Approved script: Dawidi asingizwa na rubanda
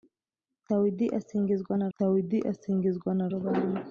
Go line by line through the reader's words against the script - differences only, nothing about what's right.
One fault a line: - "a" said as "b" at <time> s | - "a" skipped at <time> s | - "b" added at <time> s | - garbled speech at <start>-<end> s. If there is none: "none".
- "dawidi asingizwa na" added at 2.0 s